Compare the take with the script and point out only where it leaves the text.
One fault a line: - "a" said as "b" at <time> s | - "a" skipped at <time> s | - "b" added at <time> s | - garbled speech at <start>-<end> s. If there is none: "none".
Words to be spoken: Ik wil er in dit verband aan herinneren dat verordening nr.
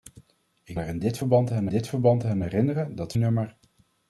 - "wil" skipped at 0.8 s
- "dit verband aan" added at 1.7 s
- "verordening" skipped at 3.1 s